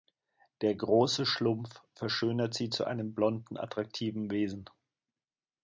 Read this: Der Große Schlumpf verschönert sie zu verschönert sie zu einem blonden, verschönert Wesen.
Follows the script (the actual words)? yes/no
no